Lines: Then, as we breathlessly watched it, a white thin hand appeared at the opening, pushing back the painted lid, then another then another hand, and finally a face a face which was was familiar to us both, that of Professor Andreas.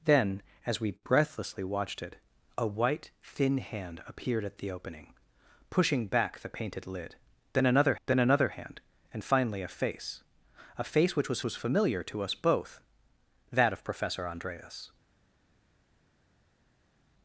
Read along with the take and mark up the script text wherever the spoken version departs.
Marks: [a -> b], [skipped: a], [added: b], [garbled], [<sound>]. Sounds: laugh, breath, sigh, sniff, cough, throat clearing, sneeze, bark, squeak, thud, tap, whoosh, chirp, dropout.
Then, as we breathlessly watched it, a white thin hand appeared at the opening, pushing back the painted lid, then another then another hand, and finally a face a face which was was familiar to us both, that of Professor Andreas.